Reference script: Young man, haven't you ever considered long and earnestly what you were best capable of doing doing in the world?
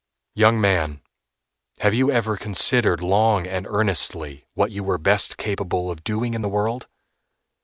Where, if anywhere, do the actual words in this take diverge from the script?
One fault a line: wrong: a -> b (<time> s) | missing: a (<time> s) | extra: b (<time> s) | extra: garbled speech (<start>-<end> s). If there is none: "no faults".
wrong: haven't -> have (1.8 s)
missing: doing (6.3 s)